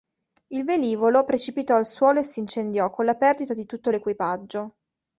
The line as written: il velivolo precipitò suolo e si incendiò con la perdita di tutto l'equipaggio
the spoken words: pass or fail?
fail